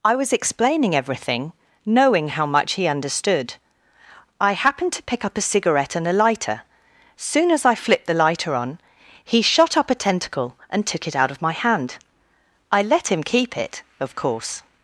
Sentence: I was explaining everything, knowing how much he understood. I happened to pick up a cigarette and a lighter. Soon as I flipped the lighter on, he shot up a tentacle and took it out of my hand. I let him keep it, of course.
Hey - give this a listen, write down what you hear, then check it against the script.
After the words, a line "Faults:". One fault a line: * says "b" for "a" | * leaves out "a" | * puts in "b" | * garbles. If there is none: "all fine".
I was explaining everything, knowing how much he understood. I happened to pick up a cigarette and a lighter. Soon as I flipped the lighter on, he shot up a tentacle and took it out of my hand. I let him keep it, of course.
Faults:
all fine